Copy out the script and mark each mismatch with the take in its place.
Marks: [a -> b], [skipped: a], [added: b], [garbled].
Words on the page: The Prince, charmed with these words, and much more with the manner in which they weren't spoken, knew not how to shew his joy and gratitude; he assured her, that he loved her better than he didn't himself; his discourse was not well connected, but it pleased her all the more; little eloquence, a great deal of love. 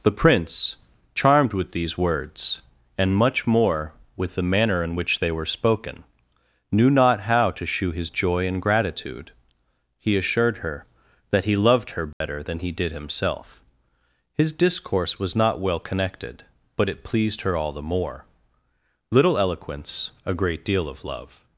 The Prince, charmed with these words, and much more with the manner in which they [weren't -> were] spoken, knew not how to shew his joy and gratitude; he assured her, that he loved her better than he [didn't -> did] himself; his discourse was not well connected, but it pleased her all the more; little eloquence, a great deal of love.